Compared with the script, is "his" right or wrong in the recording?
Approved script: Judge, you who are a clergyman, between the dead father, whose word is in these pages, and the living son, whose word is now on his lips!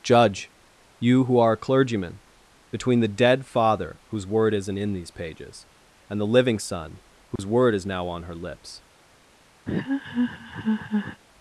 wrong